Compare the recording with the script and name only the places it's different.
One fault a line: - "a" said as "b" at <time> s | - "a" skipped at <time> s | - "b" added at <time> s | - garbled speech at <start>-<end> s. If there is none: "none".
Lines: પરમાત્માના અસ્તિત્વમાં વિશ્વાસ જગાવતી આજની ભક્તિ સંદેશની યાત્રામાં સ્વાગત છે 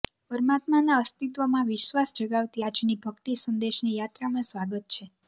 none